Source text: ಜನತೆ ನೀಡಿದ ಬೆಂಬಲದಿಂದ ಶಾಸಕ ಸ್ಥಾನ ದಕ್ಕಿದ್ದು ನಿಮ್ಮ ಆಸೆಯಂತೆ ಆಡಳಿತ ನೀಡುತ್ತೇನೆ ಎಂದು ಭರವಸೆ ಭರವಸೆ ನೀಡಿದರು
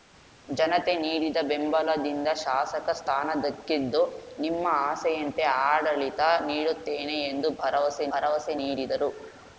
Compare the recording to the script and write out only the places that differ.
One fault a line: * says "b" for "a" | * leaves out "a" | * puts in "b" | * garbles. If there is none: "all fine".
all fine